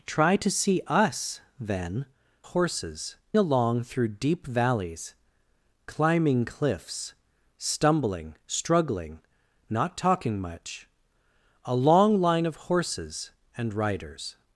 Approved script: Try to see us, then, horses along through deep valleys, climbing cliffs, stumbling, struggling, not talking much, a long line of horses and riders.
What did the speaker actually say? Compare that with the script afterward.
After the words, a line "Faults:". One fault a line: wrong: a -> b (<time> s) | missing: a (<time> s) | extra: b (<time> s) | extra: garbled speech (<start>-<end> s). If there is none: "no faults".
Try to see us, then, horses along through deep valleys, climbing cliffs, stumbling, struggling, not talking much, a long line of horses and riders.
Faults:
no faults